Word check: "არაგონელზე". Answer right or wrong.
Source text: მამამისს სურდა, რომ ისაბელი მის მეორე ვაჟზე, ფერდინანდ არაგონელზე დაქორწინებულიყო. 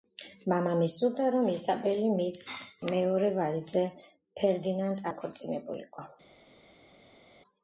wrong